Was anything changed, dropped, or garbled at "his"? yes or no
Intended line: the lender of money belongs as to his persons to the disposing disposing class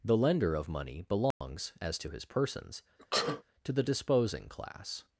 no